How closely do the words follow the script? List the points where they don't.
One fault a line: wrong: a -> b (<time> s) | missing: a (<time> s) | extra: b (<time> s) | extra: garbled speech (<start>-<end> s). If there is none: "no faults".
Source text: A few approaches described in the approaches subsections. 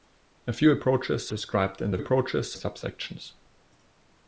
no faults